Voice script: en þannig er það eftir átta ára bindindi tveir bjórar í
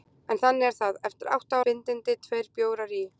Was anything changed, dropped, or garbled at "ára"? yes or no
yes